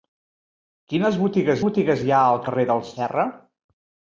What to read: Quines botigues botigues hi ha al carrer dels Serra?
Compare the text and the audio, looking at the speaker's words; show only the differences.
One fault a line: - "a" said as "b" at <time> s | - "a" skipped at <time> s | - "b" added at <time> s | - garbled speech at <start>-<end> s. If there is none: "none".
none